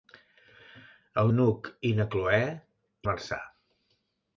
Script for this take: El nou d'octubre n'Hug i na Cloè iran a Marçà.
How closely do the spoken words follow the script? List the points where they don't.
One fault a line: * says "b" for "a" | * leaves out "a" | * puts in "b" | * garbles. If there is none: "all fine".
* leaves out "nou d'octubre"
* leaves out "iran"